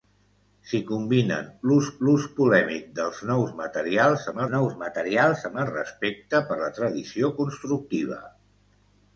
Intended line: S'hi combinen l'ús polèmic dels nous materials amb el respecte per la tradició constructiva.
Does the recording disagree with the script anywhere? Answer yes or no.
yes